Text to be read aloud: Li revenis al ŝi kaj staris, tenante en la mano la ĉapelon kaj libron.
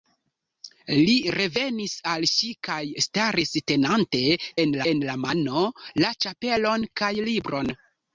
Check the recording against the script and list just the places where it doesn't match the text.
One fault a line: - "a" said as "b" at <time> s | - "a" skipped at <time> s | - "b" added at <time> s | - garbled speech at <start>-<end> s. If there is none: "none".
- "en" added at 4.9 s